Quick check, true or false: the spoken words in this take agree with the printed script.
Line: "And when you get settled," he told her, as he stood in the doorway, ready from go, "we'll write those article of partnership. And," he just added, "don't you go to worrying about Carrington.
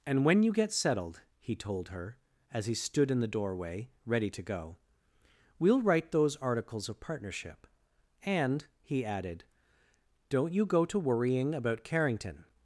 false